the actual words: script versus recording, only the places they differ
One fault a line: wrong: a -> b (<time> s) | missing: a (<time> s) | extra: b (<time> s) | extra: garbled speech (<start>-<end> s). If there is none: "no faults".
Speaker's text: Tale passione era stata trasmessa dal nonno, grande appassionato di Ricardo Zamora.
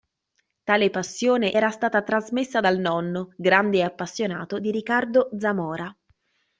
no faults